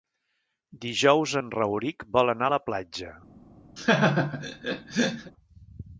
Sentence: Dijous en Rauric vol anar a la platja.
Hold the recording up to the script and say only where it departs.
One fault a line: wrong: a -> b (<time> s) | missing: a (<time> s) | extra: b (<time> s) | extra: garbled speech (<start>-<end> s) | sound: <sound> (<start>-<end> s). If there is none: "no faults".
sound: laugh (3.8-5.3 s)